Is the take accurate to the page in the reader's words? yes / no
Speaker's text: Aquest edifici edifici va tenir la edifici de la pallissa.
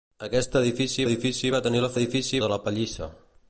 yes